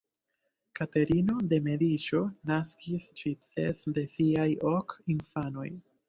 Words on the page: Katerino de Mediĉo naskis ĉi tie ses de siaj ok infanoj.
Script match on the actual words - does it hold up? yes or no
no